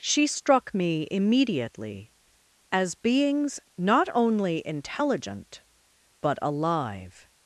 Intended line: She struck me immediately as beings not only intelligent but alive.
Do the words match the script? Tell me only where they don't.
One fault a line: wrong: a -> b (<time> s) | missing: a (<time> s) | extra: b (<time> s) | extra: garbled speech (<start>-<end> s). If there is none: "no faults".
no faults